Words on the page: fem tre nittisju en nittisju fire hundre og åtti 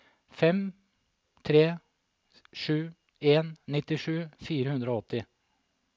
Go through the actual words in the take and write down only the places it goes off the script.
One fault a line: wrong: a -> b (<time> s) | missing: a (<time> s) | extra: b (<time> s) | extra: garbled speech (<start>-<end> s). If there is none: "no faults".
wrong: nittisju -> sju (2.6 s)